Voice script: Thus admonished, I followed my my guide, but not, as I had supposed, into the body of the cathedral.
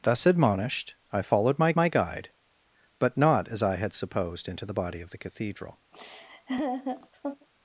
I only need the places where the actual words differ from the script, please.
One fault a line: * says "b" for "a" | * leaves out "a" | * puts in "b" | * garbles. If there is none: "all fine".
all fine